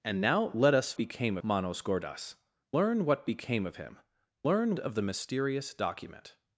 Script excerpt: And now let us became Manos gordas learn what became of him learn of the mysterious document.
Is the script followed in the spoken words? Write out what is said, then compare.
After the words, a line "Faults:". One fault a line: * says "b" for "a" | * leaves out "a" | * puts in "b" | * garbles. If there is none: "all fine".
And now let us became Manos gordas learn what became of him learn of the mysterious document.
Faults:
all fine